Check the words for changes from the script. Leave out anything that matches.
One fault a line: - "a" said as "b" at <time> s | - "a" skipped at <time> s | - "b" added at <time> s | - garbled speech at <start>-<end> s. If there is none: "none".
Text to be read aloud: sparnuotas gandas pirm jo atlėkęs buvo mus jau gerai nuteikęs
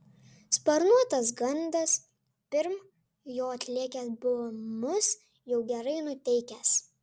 none